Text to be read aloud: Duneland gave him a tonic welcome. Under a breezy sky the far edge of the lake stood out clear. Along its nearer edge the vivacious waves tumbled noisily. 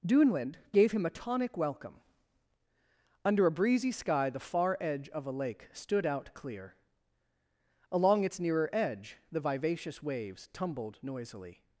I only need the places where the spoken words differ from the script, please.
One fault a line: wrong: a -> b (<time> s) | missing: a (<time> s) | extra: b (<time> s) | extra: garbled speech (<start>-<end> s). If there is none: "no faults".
wrong: the -> a (5.3 s)